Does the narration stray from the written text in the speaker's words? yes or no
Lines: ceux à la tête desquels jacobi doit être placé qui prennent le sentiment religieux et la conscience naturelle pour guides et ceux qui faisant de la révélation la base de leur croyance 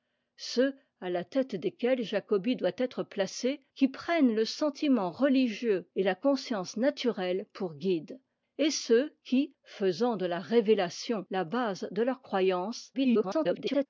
yes